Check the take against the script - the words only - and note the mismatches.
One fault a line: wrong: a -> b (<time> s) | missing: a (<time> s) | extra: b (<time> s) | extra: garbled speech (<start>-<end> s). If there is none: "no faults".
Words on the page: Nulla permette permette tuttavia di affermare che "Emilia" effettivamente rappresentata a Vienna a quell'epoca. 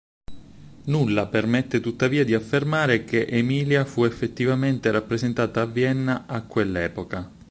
missing: permette (1.8 s)
extra: fu (3.9 s)